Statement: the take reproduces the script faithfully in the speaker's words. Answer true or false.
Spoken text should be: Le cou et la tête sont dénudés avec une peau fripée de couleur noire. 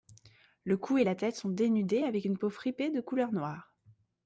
true